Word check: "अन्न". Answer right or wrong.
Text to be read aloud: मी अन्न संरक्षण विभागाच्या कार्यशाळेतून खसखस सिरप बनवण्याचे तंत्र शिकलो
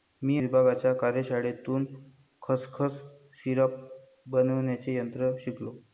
wrong